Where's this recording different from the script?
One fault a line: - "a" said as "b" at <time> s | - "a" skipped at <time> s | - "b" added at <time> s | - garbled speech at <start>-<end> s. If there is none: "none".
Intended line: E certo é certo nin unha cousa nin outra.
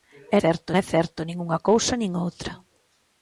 none